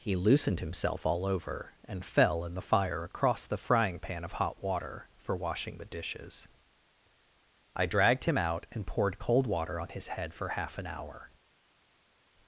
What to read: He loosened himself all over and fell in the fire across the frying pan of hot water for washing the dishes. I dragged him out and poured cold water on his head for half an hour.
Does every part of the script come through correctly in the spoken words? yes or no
yes